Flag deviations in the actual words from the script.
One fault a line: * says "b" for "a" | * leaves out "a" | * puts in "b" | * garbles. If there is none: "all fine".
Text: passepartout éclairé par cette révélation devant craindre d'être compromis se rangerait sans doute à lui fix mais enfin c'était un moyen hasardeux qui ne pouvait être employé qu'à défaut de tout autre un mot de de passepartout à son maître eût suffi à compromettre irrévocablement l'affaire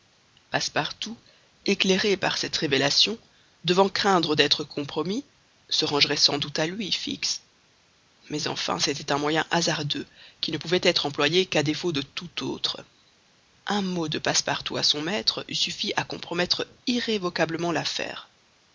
* leaves out "de"